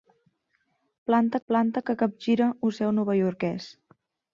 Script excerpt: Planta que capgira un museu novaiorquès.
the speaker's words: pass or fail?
fail